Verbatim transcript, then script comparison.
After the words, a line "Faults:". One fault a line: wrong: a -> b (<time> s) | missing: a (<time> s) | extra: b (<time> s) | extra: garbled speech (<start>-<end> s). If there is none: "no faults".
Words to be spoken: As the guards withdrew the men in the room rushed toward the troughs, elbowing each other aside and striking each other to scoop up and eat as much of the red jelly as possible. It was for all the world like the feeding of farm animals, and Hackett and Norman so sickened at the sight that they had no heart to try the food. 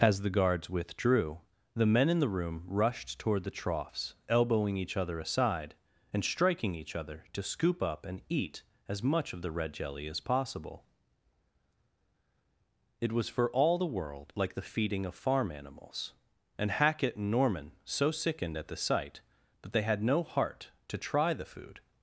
As the guards withdrew the men in the room rushed toward the troughs, elbowing each other aside and striking each other to scoop up and eat as much of the red jelly as possible. It was for all the world like the feeding of farm animals, and Hackett and Norman so sickened at the sight that they had no heart to try the food.
Faults:
no faults